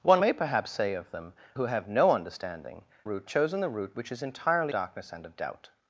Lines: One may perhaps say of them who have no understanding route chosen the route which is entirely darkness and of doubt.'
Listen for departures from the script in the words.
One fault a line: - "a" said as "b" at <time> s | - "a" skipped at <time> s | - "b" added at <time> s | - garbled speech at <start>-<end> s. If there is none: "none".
none